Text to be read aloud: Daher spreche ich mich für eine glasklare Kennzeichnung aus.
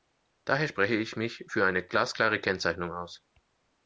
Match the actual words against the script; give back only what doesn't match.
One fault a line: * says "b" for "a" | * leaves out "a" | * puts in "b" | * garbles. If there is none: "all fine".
all fine